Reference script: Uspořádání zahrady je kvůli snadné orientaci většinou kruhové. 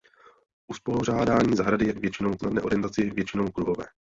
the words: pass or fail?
fail